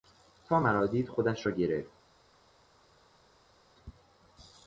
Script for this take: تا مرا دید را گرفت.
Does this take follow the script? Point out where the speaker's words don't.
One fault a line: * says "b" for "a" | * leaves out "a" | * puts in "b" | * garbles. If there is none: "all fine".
* puts in "خودش"